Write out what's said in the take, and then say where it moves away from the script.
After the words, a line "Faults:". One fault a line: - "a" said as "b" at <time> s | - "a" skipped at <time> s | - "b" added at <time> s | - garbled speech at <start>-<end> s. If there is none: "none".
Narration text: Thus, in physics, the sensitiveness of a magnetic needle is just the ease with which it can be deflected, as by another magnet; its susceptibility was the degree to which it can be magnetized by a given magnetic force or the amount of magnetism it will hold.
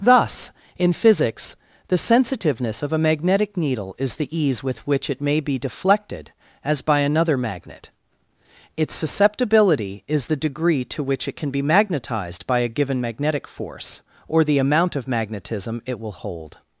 Thus, in physics, the sensitiveness of a magnetic needle is the ease with which it may be deflected, as by another magnet; its susceptibility is the degree to which it can be magnetized by a given magnetic force or the amount of magnetism it will hold.
Faults:
- "just" skipped at 4.2 s
- "can" said as "may" at 5.2 s
- "was" said as "is" at 10.1 s